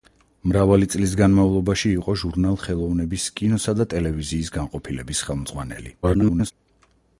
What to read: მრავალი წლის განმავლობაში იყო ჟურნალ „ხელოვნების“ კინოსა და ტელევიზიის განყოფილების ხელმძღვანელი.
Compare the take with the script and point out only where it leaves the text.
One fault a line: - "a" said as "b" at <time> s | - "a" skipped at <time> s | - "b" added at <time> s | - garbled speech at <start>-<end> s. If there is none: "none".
- garbled speech at 6.0-6.5 s